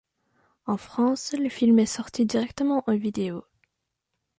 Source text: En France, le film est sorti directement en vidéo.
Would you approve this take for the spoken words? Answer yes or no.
yes